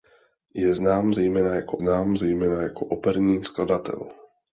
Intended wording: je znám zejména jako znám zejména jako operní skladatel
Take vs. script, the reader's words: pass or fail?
pass